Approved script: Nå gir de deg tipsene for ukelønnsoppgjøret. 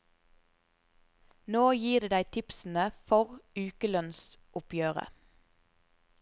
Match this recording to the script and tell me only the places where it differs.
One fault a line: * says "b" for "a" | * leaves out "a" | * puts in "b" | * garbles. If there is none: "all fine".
all fine